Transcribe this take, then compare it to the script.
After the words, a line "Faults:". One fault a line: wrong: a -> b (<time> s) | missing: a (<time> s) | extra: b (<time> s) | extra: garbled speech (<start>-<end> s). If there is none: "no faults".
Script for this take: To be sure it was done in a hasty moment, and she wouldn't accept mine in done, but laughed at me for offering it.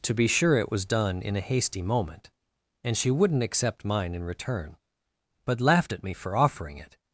To be sure it was done in a hasty moment, and she wouldn't accept mine in return, but laughed at me for offering it.
Faults:
wrong: done -> return (4.2 s)